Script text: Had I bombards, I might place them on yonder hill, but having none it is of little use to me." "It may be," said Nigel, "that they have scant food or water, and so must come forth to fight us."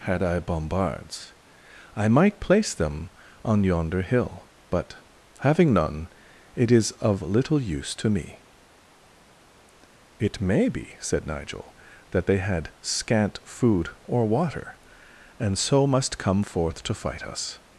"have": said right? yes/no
no